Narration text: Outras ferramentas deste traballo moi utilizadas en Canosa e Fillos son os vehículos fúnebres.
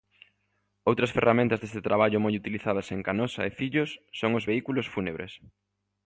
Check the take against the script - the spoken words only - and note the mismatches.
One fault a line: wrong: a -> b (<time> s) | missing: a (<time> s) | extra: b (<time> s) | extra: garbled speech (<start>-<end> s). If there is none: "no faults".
no faults